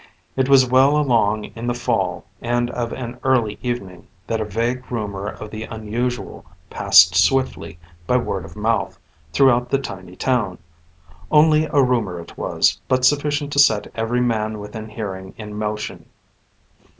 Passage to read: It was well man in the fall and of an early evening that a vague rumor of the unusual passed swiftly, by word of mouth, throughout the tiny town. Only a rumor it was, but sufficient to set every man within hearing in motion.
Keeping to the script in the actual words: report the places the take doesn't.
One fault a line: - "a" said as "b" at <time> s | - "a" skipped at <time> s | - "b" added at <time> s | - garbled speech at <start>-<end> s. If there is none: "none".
- "man" said as "along" at 1.0 s